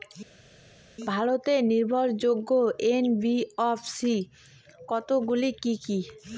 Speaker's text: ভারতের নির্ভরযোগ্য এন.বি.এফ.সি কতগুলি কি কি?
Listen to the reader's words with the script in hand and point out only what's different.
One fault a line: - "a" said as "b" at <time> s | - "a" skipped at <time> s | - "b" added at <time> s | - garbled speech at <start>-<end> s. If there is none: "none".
none